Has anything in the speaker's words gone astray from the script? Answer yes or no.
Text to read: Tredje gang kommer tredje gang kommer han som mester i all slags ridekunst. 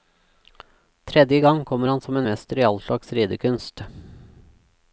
yes